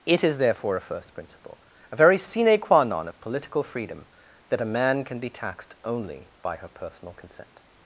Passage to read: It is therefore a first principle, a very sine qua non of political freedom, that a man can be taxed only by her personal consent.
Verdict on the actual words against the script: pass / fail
pass